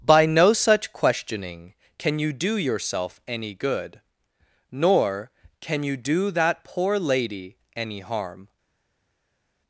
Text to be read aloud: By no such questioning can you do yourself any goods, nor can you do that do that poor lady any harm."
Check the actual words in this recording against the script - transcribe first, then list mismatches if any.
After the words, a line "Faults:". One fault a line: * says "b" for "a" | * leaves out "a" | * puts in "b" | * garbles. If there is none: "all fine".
By no such questioning can you do yourself any good, nor can you do that poor lady any harm."
Faults:
* says "good" for "goods"
* leaves out "do that"